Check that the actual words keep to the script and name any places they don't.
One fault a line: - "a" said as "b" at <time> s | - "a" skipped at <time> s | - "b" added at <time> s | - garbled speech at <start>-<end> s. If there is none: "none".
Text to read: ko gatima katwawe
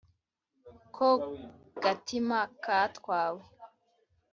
none